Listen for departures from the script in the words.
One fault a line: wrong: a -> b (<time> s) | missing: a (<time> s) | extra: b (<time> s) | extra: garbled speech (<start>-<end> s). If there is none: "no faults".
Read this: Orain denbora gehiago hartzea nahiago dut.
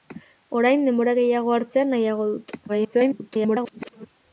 extra: garbled speech (2.7-4.1 s)